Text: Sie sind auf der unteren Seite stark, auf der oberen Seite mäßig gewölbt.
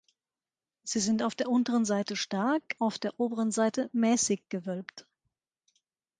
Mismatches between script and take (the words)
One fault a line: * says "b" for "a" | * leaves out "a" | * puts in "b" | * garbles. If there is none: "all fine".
all fine